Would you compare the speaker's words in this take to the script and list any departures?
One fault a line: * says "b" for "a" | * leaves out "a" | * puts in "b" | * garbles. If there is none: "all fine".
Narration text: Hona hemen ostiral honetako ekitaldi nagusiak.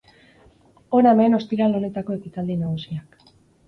all fine